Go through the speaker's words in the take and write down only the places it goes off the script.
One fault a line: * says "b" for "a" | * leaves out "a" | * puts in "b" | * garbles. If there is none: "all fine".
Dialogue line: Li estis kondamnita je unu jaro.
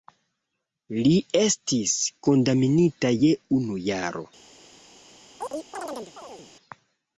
all fine